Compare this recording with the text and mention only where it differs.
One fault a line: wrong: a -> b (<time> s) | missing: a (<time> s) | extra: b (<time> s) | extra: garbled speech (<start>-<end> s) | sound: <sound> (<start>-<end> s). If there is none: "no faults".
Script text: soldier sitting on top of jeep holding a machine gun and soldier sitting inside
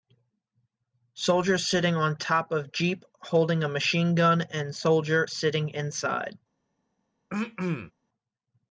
sound: throat clearing (7.3-7.9 s)